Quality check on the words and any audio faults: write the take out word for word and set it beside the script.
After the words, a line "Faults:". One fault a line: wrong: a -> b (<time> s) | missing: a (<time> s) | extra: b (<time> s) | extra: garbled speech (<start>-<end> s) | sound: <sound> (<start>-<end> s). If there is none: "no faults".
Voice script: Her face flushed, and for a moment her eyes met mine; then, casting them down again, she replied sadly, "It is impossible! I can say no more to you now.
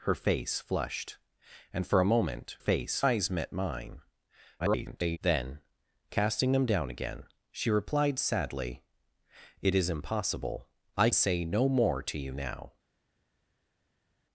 Her face flushed, and for a moment face eyes met mine; [garbled] then, casting them down again, she replied sadly, "It is impossible! I say no more to you now.
Faults:
wrong: her -> face (2.6 s)
extra: garbled speech (4.6-5.2 s)
missing: can (11.1 s)